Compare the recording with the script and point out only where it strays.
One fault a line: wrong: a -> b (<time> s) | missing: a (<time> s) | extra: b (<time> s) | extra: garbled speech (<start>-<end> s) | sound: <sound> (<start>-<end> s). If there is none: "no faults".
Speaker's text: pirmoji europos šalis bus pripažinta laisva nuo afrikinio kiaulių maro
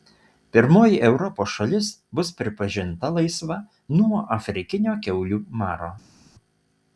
no faults